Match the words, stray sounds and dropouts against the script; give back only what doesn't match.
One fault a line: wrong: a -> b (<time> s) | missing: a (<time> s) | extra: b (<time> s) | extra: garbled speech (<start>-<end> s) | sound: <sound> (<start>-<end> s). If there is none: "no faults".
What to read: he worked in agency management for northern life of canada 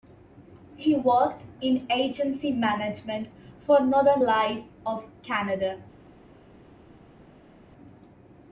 no faults